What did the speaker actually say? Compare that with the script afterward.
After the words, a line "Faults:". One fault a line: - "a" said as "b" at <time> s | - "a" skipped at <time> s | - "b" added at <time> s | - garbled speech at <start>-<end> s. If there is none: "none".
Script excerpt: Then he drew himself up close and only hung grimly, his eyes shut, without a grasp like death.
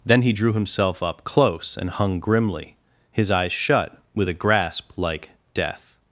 Then he drew himself up close and hung grimly, his eyes shut, with a grasp like death.
Faults:
- "only" skipped at 1.9 s
- "without" said as "with" at 4.1 s